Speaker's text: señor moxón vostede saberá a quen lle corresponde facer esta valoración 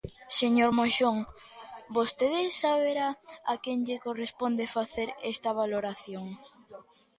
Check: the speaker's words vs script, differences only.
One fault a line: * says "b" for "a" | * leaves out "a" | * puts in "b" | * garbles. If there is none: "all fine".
all fine